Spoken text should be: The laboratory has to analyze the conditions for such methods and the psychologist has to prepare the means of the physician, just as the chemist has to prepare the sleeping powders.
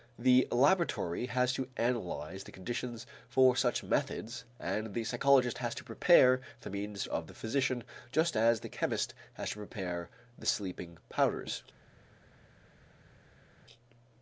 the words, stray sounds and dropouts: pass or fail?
pass